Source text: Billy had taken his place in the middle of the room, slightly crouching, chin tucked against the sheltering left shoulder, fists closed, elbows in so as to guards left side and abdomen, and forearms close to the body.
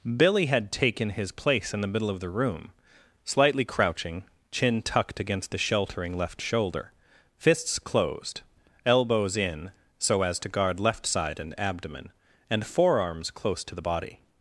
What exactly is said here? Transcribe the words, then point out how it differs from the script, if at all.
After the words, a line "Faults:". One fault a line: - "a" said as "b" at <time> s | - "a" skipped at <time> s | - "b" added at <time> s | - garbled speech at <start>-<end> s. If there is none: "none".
Billy had taken his place in the middle of the room, slightly crouching, chin tucked against the sheltering left shoulder, fists closed, elbows in so as to guard left side and abdomen, and forearms close to the body.
Faults:
- "guards" said as "guard" at 10.5 s